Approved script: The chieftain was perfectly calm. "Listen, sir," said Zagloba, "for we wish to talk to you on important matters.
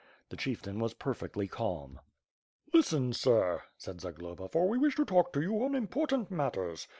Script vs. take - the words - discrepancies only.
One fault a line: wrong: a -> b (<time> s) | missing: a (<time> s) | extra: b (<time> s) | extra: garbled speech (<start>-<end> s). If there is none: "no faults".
no faults